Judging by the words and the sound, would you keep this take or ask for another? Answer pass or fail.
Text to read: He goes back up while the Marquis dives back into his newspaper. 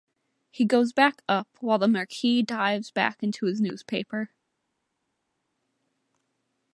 pass